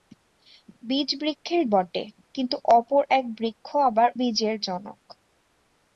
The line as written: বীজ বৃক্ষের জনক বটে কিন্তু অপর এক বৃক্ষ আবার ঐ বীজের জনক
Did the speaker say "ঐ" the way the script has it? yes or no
no